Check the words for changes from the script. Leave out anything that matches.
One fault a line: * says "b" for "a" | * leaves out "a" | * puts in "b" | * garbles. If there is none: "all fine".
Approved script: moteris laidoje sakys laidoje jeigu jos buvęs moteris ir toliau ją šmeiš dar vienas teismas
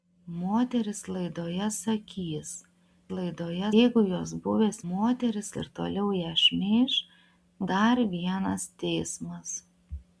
all fine